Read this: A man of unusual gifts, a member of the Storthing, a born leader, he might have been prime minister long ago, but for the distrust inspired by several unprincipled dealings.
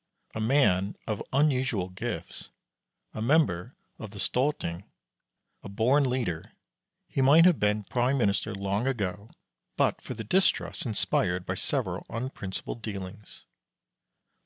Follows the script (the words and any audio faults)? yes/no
yes